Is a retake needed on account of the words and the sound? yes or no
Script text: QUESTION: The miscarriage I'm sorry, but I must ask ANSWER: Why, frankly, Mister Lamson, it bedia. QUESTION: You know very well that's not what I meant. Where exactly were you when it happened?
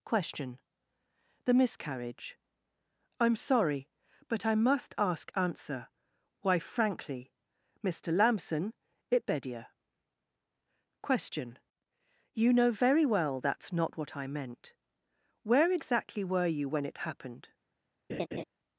yes